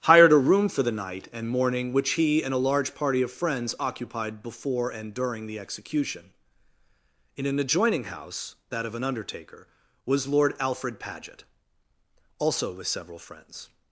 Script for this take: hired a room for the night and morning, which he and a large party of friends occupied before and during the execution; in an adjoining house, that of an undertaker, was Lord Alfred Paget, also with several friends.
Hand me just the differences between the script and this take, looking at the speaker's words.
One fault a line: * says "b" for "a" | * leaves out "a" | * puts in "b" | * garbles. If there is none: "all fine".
all fine